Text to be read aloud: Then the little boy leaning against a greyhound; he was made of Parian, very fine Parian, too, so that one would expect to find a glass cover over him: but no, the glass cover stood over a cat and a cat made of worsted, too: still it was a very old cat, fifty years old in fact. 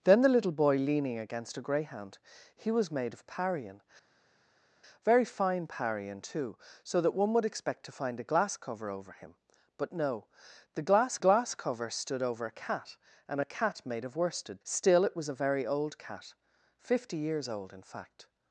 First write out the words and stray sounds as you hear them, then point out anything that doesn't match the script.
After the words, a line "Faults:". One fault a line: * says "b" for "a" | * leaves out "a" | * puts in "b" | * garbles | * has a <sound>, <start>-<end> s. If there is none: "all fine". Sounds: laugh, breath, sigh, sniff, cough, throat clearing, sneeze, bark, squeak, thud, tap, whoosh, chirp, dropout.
Then the little boy leaning against a greyhound; he was made of Parian, very fine Parian, too, so that one would expect to find a glass cover over him: but no, the glass glass cover stood over a cat and a cat made of worsted: still it was a very old cat, fifty years old in fact.
Faults:
* puts in "glass"
* leaves out "too"